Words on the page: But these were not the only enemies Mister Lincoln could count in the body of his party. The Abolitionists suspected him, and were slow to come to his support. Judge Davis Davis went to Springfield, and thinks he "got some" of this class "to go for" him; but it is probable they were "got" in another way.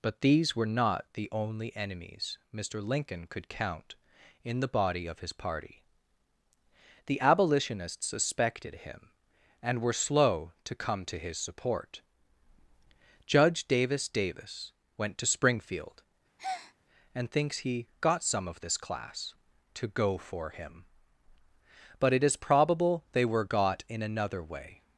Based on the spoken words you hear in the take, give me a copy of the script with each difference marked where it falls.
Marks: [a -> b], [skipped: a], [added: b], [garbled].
But these were not the only enemies Mister Lincoln could count in the body of his party. The Abolitionists suspected him, and were slow to come to his support. Judge Davis Davis went to Springfield, and thinks he "got some" of this class "to go for" him; but it is probable they were "got" in another way.